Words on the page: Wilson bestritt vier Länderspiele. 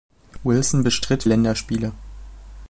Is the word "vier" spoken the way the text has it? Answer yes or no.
no